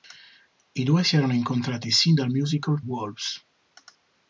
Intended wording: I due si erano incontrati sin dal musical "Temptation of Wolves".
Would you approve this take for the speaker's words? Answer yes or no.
no